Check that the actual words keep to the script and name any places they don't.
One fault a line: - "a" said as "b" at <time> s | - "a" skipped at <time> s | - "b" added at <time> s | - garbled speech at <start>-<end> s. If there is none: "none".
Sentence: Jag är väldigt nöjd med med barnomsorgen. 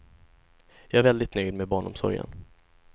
- "med" skipped at 1.7 s